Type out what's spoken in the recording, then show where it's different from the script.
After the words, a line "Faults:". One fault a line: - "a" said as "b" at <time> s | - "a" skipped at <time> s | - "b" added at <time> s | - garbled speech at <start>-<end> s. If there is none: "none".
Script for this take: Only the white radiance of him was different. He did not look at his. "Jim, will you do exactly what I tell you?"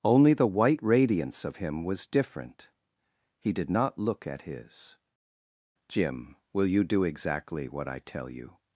Only the white radiance of him was different. He did not look at his. "Jim, will you do exactly what I tell you?"
Faults:
none